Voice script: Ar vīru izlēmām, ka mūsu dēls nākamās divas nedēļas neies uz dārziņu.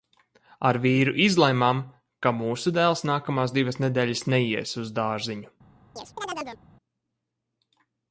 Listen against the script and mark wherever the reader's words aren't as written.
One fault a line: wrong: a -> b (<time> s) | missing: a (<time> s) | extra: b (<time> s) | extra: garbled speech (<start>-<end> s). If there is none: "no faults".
no faults